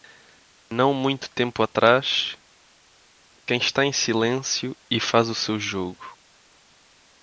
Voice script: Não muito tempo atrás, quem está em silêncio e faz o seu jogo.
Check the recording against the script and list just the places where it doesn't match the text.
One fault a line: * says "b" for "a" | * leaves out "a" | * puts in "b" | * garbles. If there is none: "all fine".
all fine